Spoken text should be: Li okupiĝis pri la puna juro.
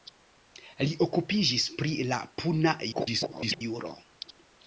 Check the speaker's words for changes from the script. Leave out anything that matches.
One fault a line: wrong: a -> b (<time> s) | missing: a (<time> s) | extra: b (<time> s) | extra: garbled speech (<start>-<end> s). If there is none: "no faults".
extra: garbled speech (2.9-3.6 s)